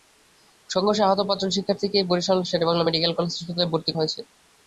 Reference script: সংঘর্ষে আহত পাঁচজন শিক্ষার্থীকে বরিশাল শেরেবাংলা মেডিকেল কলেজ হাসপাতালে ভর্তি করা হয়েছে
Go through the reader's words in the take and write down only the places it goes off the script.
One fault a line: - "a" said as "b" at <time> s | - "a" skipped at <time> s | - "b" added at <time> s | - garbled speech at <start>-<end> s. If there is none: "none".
- "করা" skipped at 3.9 s